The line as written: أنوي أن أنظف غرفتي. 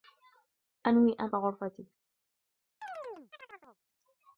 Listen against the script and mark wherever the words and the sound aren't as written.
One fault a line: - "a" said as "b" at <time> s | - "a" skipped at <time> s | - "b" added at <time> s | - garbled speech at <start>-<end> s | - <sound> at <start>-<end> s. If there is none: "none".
- "أنظف" skipped at 1.3 s
- chirp at 2.8-3.8 s